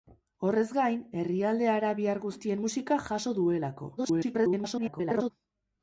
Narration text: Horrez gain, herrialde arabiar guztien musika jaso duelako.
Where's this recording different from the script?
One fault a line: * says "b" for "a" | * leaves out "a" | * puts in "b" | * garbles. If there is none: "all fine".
* garbles